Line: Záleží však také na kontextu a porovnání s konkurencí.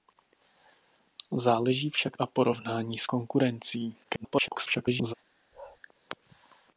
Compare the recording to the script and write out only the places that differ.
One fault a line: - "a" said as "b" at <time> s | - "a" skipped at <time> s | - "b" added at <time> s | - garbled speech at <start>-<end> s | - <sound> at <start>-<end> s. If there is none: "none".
- "také na kontextu" skipped at 2.2 s
- garbled speech at 4.0-5.1 s
- bark at 5.5-5.8 s